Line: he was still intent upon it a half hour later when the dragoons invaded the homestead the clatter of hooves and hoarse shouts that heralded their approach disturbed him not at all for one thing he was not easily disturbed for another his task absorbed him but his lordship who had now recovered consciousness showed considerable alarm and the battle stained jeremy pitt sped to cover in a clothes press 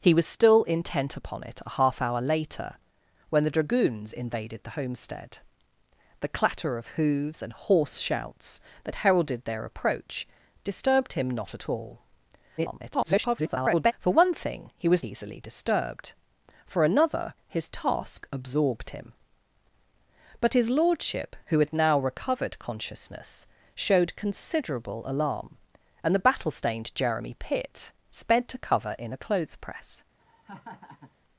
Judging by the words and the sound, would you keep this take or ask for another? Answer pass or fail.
fail